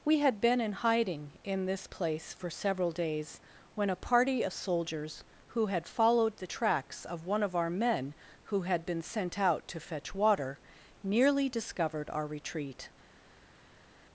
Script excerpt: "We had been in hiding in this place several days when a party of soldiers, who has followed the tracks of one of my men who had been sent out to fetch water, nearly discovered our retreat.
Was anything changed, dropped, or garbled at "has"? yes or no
yes